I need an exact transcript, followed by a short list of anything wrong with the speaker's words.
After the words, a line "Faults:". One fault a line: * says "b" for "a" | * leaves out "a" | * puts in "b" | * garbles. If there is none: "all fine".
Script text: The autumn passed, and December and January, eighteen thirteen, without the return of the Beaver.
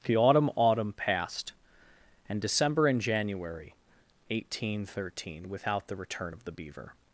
The autumn autumn passed, and December and January, eighteen thirteen, without the return of the Beaver.
Faults:
* puts in "autumn"